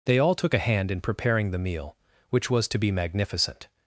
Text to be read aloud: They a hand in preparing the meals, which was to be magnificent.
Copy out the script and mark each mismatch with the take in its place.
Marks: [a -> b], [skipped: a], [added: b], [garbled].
They [added: all took] a hand in preparing the [meals, -> meal] which was to be magnificent.